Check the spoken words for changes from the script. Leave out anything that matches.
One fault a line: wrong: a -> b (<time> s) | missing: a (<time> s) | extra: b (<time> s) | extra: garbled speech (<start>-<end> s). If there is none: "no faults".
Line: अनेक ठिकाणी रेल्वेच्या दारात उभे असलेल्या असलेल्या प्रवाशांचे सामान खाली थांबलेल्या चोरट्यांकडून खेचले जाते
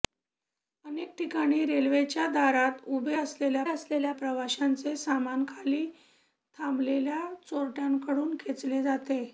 no faults